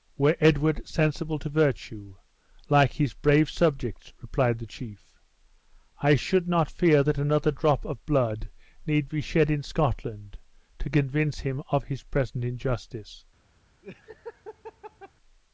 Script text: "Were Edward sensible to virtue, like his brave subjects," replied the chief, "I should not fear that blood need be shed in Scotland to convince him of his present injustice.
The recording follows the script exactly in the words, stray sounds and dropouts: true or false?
false